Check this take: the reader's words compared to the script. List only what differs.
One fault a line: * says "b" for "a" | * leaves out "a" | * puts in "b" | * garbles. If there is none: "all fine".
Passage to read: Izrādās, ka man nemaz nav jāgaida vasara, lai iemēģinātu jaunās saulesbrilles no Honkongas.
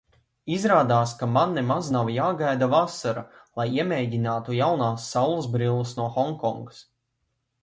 all fine